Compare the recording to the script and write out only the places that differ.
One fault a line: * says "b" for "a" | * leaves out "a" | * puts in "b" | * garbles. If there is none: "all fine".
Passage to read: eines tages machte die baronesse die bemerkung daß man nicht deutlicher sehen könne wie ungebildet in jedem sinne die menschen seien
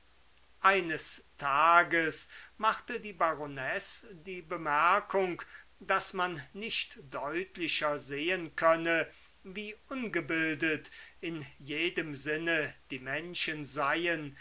all fine